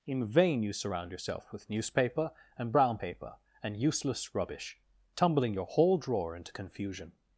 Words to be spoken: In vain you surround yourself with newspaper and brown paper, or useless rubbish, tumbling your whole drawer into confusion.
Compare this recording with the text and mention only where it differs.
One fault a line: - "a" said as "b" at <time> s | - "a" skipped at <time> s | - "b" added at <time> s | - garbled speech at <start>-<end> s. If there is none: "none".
- "or" said as "and" at 3.6 s